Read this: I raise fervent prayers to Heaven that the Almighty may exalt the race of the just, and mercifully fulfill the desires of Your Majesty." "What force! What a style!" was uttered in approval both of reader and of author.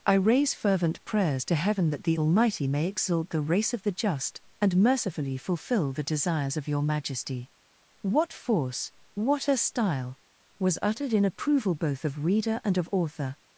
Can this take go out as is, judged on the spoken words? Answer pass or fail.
pass